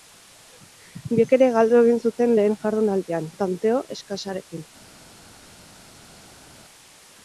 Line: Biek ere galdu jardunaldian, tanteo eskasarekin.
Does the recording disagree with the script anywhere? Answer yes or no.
yes